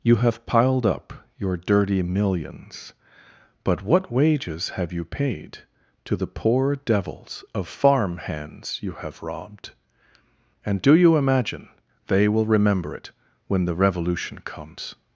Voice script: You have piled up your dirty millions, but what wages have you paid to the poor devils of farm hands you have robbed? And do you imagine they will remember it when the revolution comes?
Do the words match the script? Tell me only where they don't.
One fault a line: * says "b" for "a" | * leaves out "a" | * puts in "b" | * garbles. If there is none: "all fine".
all fine